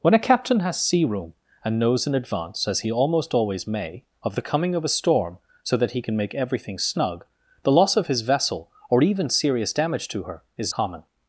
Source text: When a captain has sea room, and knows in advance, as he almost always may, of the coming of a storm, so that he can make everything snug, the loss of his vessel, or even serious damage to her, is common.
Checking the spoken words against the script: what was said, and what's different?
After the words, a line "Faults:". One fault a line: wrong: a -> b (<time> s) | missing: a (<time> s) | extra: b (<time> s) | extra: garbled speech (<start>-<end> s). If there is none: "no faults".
When a captain has sea room, and knows in advance, as he almost always may, of the coming of a storm, so that he can make everything snug, the loss of his vessel, or even serious damage to her, is common.
Faults:
no faults